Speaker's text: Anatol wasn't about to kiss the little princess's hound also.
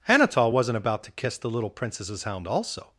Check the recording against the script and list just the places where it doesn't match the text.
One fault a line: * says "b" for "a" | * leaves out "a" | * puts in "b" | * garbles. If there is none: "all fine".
all fine